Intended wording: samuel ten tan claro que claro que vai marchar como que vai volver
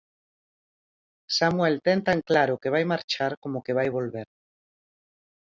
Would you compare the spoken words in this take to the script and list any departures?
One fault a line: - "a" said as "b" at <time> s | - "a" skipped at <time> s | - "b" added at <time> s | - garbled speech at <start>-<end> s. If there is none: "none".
- "claro que" skipped at 2.7 s